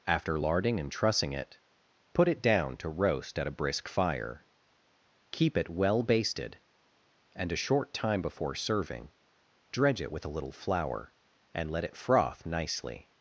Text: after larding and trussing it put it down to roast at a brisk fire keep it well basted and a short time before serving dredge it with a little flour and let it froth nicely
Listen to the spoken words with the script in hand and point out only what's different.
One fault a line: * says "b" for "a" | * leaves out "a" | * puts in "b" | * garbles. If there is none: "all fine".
all fine